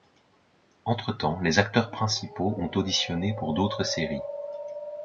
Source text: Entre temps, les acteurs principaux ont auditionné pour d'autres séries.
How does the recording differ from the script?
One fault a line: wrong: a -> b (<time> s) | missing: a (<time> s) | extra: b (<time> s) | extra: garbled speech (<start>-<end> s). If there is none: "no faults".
no faults